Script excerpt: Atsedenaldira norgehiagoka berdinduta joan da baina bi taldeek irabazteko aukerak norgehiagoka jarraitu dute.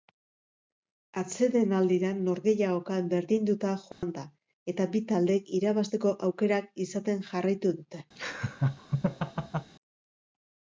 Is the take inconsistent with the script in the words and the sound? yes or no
yes